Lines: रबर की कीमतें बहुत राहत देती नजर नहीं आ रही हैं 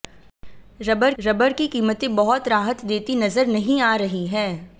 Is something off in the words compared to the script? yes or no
yes